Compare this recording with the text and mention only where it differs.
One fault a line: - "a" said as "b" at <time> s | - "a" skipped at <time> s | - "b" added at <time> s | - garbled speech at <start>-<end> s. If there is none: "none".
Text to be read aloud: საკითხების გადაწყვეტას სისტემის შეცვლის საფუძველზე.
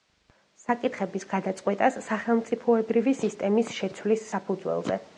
- "სახელმწიფოებრივი" added at 2.1 s